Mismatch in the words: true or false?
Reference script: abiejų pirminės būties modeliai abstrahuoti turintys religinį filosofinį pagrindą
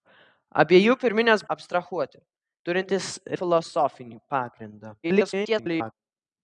true